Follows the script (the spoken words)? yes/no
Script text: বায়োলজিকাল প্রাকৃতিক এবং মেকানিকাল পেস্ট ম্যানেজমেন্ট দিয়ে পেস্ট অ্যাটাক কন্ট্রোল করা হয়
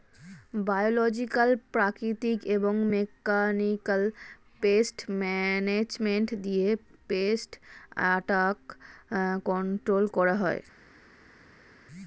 yes